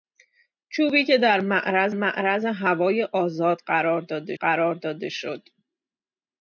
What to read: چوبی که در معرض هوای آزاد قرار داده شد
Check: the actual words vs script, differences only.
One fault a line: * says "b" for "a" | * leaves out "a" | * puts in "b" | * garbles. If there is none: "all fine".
* puts in "معرض"
* puts in "قرار داده"